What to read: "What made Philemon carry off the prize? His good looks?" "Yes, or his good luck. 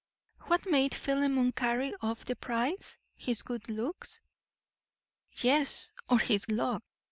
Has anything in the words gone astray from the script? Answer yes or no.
yes